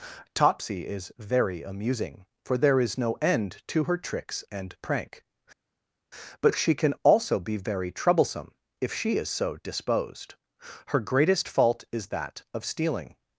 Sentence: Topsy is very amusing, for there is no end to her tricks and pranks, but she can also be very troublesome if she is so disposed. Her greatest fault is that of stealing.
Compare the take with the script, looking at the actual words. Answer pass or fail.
fail